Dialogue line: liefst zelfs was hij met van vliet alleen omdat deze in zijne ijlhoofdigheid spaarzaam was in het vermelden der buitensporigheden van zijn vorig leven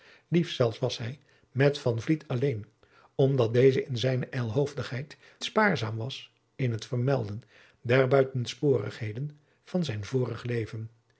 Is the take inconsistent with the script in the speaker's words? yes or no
no